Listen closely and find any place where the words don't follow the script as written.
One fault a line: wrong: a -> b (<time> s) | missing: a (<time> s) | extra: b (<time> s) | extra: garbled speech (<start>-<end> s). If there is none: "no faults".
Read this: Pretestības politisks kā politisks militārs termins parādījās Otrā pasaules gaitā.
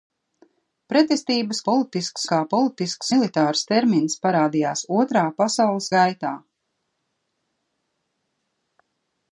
no faults